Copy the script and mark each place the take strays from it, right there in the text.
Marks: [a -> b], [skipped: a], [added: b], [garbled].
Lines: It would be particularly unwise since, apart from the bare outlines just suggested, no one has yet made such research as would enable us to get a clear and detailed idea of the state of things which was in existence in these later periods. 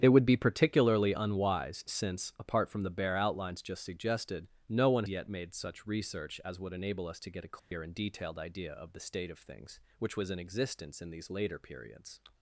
It would be particularly unwise since, apart from the bare outlines just suggested, no one [skipped: has] yet made such research as would enable us to get a clear and detailed idea of the state of things which was in existence in these later periods.